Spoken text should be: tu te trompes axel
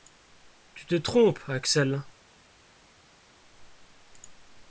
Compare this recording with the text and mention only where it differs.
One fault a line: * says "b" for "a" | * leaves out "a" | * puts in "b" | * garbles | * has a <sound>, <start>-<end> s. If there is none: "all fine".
all fine